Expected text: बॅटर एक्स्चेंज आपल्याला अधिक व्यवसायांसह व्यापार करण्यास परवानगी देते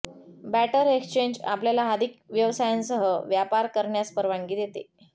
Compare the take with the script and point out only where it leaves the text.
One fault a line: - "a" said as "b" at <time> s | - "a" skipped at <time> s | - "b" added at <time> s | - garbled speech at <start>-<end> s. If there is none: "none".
none